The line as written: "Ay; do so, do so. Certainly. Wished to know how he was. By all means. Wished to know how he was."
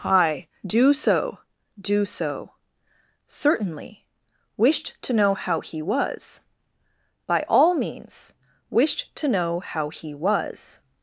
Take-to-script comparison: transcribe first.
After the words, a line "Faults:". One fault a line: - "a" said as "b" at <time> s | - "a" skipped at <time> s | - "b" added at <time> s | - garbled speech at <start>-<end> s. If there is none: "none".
"Hi; do so, do so. Certainly. Wished to know how he was. By all means. Wished to know how he was."
Faults:
- "Ay" said as "Hi" at 0.0 s